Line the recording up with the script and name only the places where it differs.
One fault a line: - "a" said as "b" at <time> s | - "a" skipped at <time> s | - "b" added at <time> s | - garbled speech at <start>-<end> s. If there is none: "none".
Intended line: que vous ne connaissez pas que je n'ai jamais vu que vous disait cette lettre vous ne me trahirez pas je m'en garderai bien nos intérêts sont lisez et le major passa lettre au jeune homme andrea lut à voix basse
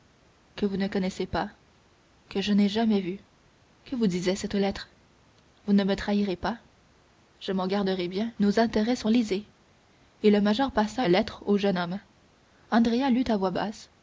none